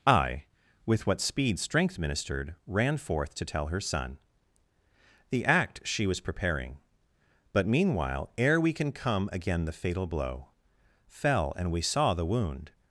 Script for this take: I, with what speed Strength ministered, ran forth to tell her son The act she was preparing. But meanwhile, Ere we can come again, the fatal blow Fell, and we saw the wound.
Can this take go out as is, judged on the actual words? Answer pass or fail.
pass